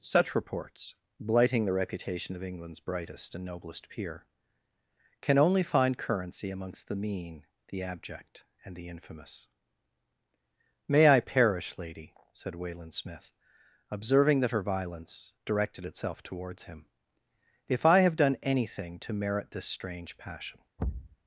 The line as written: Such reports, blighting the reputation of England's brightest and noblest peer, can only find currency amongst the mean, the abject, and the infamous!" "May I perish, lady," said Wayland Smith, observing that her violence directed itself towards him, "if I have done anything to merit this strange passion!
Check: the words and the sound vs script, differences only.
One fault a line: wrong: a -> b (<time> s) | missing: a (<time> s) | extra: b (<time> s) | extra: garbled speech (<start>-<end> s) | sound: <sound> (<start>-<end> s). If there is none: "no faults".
sound: thud (20.8-21.2 s)